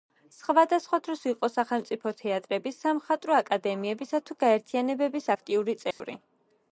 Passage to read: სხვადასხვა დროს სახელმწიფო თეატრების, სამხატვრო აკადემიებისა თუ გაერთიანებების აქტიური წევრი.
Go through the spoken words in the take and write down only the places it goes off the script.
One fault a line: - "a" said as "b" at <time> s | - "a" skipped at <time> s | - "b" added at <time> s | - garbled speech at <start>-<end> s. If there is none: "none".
- "იყო" added at 1.3 s